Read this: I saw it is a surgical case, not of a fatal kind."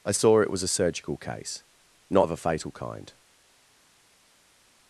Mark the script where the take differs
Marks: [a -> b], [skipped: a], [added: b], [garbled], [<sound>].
I saw it [is -> was] a surgical case, not of a fatal kind."